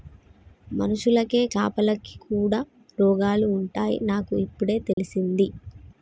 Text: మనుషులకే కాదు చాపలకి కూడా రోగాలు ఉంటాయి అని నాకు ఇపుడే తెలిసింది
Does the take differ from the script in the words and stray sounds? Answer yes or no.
yes